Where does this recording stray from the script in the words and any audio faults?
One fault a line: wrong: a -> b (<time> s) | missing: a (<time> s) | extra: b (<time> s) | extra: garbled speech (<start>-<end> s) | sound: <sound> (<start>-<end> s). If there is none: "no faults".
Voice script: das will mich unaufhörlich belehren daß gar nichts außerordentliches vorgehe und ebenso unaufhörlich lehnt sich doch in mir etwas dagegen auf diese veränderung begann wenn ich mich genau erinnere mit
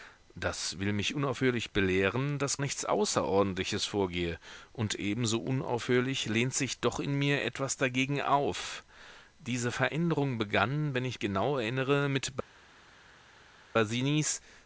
missing: gar (2.6 s)
missing: mich (11.2 s)